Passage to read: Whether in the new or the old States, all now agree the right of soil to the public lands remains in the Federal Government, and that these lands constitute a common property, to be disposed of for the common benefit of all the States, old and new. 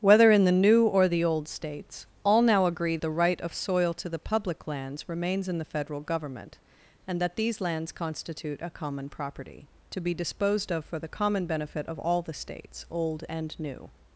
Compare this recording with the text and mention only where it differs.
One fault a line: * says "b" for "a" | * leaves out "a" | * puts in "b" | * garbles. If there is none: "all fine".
all fine